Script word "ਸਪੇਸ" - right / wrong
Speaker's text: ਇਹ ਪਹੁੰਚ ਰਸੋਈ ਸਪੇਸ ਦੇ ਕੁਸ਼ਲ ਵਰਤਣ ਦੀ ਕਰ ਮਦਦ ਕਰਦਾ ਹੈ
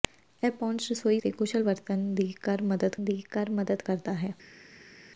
wrong